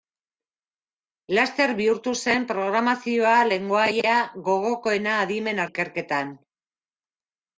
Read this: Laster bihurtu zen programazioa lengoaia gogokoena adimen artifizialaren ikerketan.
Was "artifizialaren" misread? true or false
true